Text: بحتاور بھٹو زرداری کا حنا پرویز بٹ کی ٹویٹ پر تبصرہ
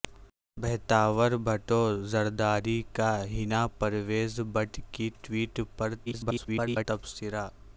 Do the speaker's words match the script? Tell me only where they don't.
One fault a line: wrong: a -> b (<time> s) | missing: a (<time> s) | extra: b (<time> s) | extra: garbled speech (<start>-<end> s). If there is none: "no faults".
extra: garbled speech (6.1-6.9 s)